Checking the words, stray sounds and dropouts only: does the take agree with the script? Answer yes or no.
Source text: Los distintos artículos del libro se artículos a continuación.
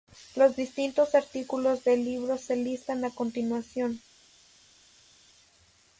no